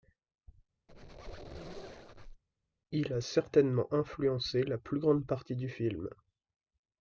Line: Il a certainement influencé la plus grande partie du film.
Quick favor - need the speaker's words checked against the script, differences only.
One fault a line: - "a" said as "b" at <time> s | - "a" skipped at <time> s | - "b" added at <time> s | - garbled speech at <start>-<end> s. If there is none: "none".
none